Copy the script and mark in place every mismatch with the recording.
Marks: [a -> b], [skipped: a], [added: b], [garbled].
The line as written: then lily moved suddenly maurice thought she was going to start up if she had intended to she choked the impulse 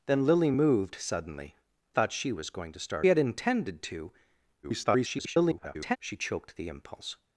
then lily moved suddenly [skipped: maurice] thought she was going to start [skipped: up if she] had intended to [garbled] she choked the impulse